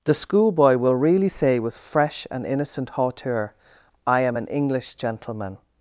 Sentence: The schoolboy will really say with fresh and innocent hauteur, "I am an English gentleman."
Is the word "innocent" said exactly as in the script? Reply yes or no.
yes